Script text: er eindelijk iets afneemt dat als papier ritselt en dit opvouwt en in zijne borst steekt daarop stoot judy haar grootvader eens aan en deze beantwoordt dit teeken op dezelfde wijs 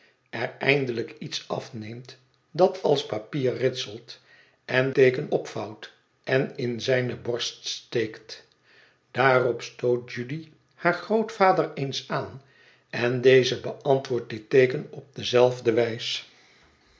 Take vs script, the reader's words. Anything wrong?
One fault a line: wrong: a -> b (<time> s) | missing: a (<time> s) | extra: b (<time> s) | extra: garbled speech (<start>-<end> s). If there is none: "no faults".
wrong: dit -> teeken (4.9 s)